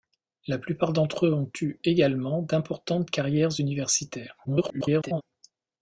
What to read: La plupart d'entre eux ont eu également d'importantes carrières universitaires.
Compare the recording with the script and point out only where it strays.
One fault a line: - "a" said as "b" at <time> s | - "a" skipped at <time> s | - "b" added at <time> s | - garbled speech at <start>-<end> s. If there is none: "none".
- garbled speech at 4.4-5.2 s